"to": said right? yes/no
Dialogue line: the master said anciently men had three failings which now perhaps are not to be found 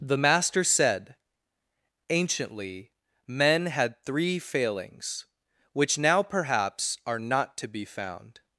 yes